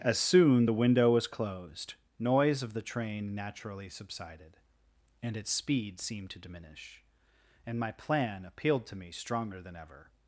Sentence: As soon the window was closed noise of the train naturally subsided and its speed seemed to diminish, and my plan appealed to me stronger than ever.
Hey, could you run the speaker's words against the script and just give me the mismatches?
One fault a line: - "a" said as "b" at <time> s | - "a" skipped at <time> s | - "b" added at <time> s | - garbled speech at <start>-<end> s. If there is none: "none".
none